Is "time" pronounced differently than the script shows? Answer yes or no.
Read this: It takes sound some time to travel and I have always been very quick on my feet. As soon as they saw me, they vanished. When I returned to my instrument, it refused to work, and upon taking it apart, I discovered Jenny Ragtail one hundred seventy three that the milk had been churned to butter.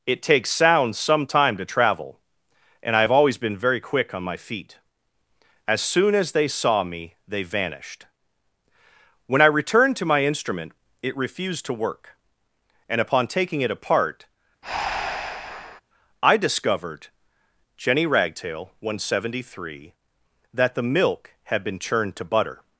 no